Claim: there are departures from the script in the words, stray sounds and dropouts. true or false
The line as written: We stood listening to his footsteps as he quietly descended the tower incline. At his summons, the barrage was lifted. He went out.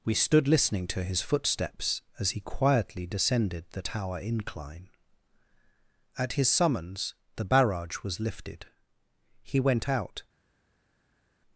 false